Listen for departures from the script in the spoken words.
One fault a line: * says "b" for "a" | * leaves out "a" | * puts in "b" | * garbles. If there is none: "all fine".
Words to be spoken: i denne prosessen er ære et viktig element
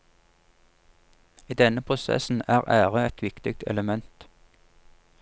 all fine